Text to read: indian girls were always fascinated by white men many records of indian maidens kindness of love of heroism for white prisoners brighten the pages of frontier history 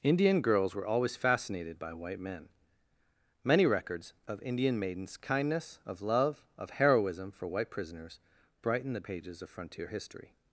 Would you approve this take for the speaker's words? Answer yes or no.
yes